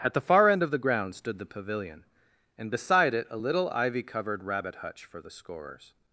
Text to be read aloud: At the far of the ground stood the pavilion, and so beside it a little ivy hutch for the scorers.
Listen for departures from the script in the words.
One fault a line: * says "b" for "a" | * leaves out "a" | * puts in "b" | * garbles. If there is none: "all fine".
* puts in "end"
* leaves out "so"
* puts in "covered rabbit"